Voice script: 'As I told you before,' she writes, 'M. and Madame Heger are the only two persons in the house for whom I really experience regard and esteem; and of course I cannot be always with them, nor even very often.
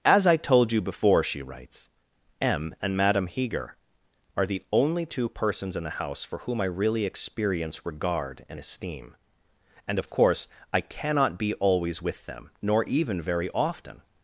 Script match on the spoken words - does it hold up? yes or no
yes